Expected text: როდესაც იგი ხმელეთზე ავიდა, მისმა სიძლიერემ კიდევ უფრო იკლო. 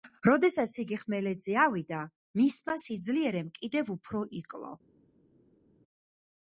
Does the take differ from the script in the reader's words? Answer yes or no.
no